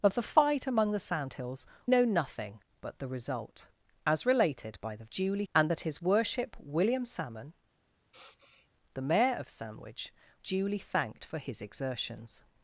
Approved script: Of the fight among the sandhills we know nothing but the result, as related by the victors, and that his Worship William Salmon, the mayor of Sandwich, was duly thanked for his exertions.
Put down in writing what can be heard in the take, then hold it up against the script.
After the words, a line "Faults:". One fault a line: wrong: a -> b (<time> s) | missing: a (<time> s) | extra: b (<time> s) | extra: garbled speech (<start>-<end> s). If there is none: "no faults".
Of the fight among the sandhills know nothing but the result, as related by the duly, and that his Worship William Salmon, the mayor of Sandwich, duly thanked for his exertions.
Faults:
missing: we (1.7 s)
wrong: victors -> duly (5.0 s)
missing: was (10.1 s)